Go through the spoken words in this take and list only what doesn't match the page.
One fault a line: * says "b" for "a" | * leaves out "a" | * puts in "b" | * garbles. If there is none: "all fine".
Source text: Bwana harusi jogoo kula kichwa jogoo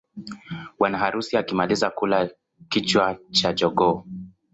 * says "akimaliza" for "jogoo"
* puts in "cha"